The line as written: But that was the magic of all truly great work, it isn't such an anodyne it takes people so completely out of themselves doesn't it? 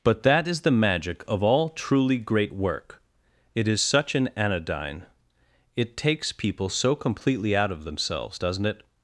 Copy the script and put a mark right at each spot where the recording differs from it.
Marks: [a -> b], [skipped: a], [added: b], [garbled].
But that [was -> is] the magic of all truly great work, it [isn't -> is] such an anodyne it takes people so completely out of themselves doesn't it?